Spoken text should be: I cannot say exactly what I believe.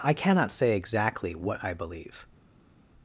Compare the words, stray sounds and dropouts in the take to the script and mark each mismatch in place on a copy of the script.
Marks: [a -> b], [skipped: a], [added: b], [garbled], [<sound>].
I cannot say exactly what I believe.